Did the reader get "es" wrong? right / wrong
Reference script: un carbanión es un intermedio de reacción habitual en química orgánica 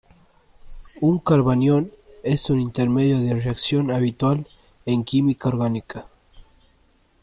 right